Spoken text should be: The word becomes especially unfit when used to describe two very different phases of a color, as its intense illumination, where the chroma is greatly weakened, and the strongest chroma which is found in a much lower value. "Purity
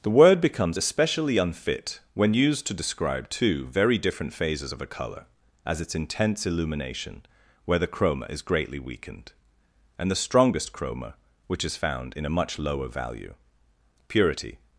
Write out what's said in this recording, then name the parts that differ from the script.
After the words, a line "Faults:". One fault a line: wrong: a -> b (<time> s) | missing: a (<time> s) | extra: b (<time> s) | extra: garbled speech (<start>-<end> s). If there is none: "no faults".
The word becomes especially unfit when used to describe two very different phases of a color, as its intense illumination, where the chroma is greatly weakened, and the strongest chroma which is found in a much lower value. "Purity
Faults:
no faults